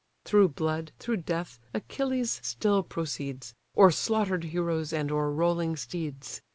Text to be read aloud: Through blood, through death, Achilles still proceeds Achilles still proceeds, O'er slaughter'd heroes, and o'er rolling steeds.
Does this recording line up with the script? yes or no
no